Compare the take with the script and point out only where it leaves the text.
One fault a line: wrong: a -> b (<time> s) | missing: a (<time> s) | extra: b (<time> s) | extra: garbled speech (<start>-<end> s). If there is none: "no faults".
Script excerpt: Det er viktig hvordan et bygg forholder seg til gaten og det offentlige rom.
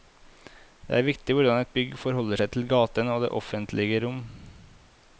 no faults